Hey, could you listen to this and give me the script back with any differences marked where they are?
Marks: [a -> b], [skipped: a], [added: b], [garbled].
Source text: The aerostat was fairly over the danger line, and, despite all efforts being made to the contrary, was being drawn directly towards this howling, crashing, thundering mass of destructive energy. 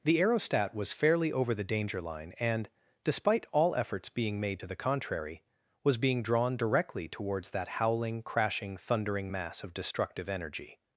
The aerostat was fairly over the danger line, and, despite all efforts being made to the contrary, was being drawn directly towards [this -> that] howling, crashing, thundering mass of destructive energy.